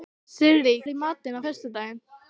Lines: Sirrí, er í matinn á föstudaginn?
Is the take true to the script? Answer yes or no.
yes